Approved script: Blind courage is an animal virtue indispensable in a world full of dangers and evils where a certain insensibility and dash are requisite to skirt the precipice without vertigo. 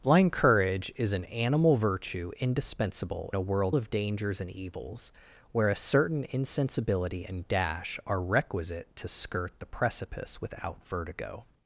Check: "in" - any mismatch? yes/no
yes